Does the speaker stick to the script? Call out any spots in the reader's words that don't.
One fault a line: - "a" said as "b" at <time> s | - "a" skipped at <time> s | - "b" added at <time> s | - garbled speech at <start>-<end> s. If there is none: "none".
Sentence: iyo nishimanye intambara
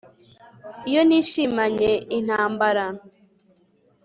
none